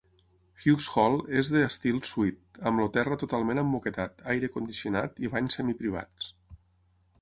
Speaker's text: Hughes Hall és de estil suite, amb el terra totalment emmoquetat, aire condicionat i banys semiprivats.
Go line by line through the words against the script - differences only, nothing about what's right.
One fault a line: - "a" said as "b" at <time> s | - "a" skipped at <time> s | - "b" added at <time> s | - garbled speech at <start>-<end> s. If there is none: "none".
none